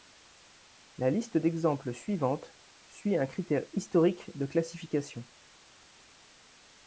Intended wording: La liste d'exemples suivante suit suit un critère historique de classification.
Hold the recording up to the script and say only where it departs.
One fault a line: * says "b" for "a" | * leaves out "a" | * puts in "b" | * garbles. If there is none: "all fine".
* leaves out "suit"